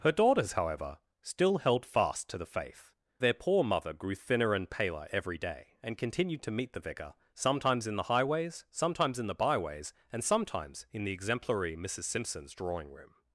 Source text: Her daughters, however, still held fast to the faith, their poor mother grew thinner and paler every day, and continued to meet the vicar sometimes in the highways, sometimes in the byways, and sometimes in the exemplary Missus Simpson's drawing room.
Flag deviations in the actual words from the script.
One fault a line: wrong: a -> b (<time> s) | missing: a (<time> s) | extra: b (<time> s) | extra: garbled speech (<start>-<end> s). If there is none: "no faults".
no faults